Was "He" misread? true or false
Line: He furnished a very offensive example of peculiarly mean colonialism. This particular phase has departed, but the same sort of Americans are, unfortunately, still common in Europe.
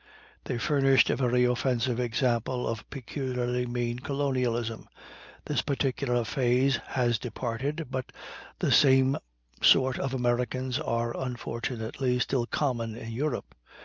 true